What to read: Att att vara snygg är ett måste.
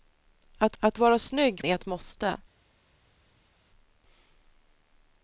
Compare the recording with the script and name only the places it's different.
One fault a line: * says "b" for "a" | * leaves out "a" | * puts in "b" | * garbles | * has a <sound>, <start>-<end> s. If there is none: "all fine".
all fine